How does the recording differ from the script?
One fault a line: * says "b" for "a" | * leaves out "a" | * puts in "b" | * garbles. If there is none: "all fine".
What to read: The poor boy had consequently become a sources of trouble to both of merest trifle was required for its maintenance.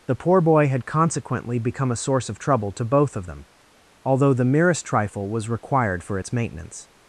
* says "source" for "sources"
* puts in "them although the"